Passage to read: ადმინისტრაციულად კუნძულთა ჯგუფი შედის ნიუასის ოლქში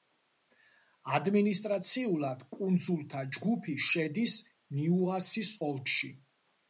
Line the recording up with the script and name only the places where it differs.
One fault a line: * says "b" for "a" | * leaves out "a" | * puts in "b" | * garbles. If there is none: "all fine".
all fine